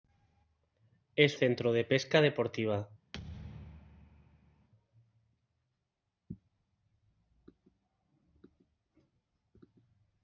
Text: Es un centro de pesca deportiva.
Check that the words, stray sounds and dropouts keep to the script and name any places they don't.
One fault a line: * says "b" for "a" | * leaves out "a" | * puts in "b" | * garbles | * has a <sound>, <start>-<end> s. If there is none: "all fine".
* leaves out "un"
* has a thud, 3.1-4.7 s